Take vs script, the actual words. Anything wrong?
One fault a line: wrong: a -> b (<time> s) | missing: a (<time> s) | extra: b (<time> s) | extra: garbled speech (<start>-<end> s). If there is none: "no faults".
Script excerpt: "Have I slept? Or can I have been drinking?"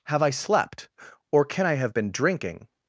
no faults